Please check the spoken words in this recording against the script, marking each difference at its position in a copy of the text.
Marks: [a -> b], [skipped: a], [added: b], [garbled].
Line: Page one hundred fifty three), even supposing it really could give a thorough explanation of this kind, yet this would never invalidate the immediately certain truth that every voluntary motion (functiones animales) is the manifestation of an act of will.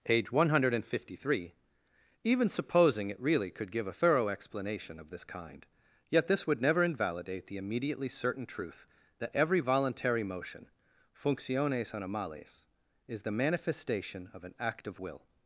Page one hundred fifty three), even supposing it really could give a thorough explanation of this kind, yet this would never invalidate the immediately certain truth that every voluntary motion (functiones animales) is the manifestation of an act of will.